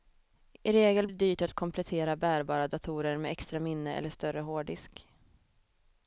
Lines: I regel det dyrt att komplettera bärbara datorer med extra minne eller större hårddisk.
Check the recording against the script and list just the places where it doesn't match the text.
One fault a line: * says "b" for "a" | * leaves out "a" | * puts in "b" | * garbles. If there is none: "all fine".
all fine